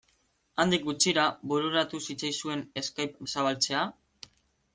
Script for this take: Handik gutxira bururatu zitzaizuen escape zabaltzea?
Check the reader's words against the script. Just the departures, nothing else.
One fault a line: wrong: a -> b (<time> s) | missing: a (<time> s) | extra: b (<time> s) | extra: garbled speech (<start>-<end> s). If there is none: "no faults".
no faults